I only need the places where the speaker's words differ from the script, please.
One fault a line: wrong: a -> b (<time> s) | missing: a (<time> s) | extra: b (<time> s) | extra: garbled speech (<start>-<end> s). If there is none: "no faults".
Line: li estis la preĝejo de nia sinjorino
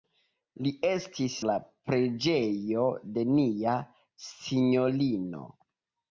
no faults